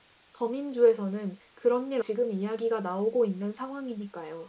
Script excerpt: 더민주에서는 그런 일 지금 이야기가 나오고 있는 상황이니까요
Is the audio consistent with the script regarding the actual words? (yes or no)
yes